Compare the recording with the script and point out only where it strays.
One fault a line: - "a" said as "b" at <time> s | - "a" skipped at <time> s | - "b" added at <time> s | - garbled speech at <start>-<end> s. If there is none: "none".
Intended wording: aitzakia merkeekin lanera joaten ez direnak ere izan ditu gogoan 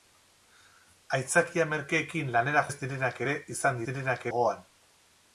- "joaten" skipped at 2.6 s
- "ditu" said as "direnak" at 3.9 s